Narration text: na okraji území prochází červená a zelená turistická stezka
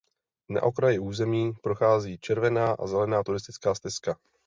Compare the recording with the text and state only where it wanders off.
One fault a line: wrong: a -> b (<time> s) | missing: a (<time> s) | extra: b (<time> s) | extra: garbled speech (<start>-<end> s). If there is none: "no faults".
no faults